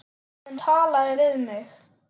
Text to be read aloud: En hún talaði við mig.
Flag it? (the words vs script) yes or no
yes